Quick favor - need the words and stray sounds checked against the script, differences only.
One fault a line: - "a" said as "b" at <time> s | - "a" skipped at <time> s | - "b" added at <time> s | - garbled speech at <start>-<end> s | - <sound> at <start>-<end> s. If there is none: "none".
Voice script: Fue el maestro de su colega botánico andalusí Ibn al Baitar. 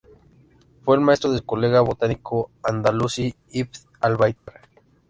- dropout at 4.4-4.5 s